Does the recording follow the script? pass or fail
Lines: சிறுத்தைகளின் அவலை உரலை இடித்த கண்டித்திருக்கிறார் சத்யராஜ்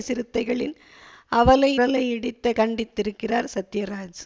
pass